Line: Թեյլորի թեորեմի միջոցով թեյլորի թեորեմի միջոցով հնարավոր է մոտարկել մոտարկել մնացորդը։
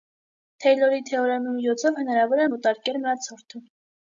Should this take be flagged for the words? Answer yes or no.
yes